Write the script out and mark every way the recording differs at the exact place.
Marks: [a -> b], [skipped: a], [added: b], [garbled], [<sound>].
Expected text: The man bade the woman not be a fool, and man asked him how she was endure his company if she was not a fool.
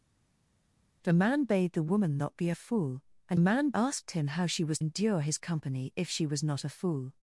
The man bade the woman not be a fool, and man asked him how she was endure his company if she was not a fool.